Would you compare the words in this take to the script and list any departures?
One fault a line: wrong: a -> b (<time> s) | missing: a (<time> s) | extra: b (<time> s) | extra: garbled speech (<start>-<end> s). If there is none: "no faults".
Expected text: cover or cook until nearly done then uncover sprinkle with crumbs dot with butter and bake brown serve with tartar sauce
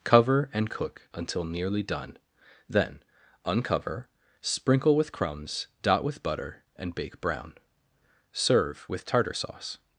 wrong: or -> and (0.5 s)